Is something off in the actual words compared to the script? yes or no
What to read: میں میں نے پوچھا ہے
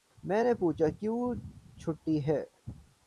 yes